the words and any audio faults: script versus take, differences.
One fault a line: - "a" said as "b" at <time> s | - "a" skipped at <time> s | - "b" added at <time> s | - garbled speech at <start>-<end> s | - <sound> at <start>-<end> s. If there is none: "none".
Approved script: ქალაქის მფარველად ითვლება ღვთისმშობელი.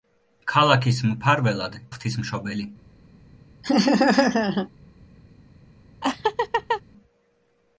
- "ითვლება" skipped at 1.8 s
- laugh at 3.6-4.7 s
- laugh at 6.0-6.8 s